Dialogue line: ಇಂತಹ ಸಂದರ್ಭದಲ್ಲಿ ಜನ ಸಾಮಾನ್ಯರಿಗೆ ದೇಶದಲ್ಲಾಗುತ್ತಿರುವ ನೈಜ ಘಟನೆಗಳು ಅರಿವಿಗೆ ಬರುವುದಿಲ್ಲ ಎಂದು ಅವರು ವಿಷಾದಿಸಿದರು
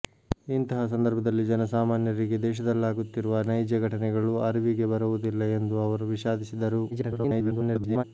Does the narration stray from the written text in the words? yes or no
yes